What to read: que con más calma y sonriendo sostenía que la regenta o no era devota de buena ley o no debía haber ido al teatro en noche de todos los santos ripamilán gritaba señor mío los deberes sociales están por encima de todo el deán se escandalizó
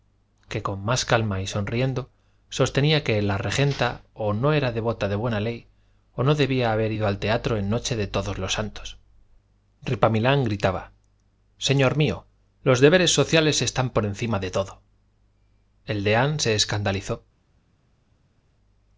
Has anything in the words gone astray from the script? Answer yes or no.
no